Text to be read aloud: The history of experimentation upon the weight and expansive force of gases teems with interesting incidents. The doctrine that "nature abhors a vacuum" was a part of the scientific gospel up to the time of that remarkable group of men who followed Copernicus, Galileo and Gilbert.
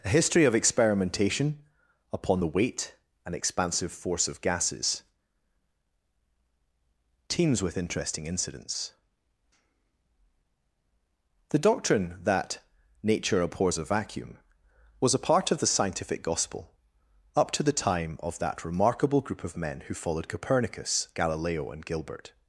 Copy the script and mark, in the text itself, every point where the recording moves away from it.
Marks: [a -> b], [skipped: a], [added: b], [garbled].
[The -> A] history of experimentation upon the weight and expansive force of gases teems with interesting incidents. The doctrine that "nature abhors a vacuum" was a part of the scientific gospel up to the time of that remarkable group of men who followed Copernicus, Galileo and Gilbert.